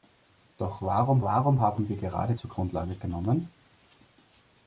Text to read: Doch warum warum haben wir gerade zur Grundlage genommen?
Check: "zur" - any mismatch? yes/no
no